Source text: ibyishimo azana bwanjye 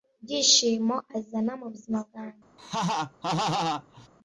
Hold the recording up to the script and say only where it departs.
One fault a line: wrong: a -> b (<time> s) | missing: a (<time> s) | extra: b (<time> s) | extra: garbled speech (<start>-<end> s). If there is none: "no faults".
extra: mubuzima (1.6 s)